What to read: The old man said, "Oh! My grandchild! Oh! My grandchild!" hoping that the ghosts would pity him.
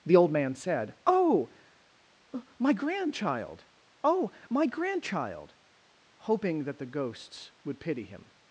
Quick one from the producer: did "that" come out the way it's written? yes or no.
yes